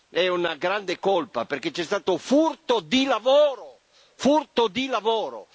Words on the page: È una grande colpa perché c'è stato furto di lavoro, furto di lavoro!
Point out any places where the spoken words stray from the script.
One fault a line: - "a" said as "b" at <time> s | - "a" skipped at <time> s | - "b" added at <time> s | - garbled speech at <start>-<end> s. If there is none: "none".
none